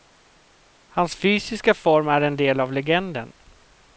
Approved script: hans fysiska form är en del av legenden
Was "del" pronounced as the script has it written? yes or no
yes